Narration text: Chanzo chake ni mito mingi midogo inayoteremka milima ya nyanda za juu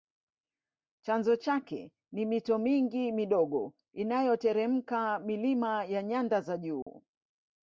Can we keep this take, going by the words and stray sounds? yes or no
no